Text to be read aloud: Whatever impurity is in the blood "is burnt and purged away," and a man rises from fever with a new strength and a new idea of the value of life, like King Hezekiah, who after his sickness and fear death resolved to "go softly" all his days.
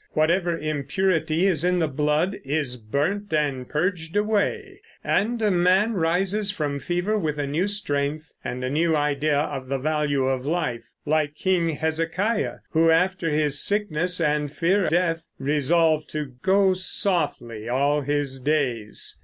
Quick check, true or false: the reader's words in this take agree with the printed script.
true